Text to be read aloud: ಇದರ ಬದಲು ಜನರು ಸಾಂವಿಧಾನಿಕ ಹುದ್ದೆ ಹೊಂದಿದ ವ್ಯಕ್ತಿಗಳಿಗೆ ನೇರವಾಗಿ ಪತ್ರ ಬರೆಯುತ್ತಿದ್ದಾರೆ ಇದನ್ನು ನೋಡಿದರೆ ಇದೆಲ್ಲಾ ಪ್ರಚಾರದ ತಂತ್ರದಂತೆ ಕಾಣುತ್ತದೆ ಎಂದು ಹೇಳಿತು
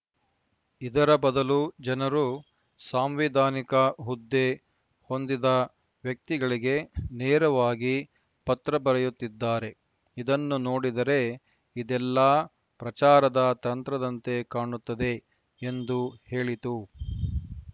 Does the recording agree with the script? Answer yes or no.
yes